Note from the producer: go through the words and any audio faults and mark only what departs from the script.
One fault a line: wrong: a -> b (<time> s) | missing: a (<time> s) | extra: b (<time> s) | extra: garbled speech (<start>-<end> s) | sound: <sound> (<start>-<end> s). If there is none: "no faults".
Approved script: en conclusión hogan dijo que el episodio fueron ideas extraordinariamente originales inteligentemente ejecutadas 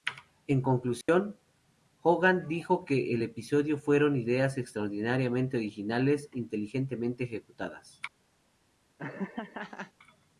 sound: dropout (1.0-1.1 s)
sound: laugh (9.0-9.9 s)